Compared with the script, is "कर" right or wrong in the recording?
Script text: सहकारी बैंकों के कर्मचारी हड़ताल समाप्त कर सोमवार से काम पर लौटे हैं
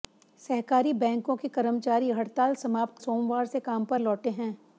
wrong